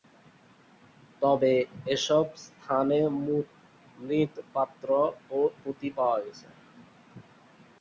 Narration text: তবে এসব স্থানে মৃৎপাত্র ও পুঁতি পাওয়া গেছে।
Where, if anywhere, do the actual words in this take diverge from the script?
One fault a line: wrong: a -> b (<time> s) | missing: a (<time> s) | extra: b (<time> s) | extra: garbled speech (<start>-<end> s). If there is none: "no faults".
no faults